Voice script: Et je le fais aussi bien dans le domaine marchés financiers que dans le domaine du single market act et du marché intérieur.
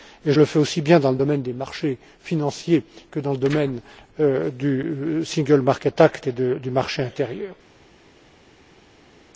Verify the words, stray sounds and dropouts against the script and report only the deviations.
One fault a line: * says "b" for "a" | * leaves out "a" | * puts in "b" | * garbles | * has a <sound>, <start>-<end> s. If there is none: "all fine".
* puts in "des"